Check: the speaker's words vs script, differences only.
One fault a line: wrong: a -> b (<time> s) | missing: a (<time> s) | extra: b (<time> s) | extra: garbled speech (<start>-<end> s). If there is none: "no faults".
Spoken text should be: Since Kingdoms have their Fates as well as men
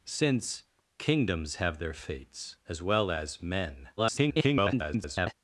extra: garbled speech (4.0-5.3 s)